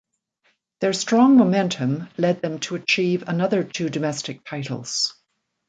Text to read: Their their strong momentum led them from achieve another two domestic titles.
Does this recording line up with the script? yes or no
no